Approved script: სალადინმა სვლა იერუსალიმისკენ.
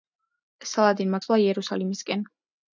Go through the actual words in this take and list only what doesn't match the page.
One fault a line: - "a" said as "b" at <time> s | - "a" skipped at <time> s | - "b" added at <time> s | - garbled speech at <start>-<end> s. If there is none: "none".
none